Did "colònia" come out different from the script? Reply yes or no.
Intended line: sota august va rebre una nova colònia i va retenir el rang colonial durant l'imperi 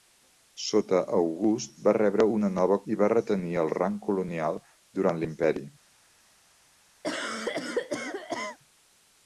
yes